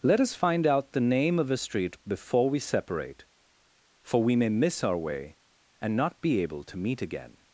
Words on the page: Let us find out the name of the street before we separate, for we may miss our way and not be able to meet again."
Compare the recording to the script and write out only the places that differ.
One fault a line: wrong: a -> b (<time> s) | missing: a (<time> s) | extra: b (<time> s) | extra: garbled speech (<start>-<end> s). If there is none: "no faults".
wrong: the -> a (1.5 s)